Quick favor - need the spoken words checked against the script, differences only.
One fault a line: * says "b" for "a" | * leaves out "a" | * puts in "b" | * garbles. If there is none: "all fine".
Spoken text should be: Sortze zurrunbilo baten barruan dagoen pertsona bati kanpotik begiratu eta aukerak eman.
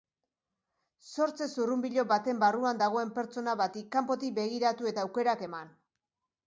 all fine